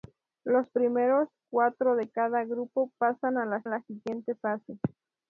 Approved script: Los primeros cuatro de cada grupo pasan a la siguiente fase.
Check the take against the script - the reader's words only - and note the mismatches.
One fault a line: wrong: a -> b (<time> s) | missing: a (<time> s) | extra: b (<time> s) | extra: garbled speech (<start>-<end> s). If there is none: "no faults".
extra: la (3.7 s)